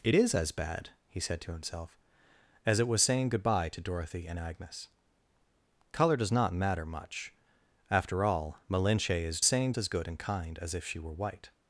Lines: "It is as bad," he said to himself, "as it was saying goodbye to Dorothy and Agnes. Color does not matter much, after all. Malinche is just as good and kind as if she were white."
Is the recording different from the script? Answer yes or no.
yes